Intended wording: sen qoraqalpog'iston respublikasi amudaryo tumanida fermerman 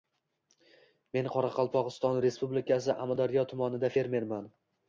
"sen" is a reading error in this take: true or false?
true